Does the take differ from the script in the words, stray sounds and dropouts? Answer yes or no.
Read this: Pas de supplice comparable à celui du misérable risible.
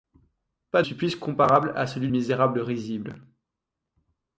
yes